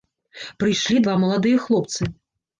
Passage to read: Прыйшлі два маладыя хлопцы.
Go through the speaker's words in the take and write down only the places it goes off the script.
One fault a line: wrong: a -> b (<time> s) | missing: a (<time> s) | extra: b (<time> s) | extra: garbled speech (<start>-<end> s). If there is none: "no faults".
no faults